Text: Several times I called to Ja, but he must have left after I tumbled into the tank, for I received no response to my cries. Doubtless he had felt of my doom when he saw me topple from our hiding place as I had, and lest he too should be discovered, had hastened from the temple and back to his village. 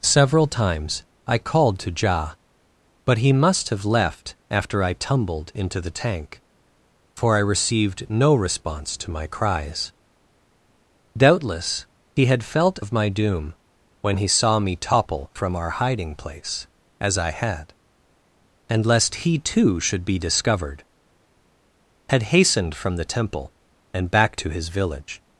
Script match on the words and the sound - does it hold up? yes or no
yes